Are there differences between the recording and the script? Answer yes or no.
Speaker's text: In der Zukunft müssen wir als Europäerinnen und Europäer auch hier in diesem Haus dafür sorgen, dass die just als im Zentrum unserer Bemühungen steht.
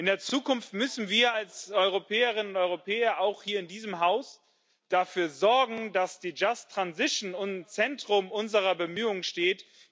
yes